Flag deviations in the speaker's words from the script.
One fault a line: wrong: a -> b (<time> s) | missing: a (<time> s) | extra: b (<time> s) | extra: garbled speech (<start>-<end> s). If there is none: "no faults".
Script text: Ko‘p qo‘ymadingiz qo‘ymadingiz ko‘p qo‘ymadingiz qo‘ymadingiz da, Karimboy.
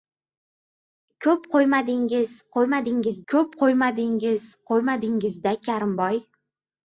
no faults